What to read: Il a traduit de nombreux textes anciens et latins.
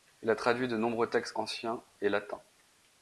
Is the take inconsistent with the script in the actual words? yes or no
no